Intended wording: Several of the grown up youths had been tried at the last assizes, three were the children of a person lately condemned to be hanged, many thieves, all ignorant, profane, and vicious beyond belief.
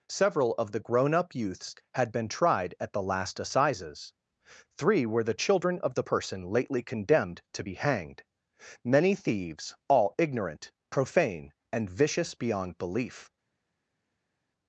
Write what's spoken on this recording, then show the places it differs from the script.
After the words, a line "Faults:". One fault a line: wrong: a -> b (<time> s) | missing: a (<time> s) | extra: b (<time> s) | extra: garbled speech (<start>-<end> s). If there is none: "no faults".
Several of the grown up youths had been tried at the last assizes, three were the children of the person lately condemned to be hanged, many thieves, all ignorant, profane, and vicious beyond belief.
Faults:
wrong: a -> the (5.9 s)